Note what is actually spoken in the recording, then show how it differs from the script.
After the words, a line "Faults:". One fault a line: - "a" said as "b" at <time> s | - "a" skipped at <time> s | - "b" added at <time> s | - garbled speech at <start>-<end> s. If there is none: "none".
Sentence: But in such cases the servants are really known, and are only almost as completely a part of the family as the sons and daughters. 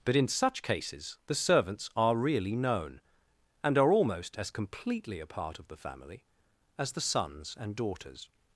But in such cases the servants are really known, and are almost as completely a part of the family as the sons and daughters.
Faults:
- "only" skipped at 3.9 s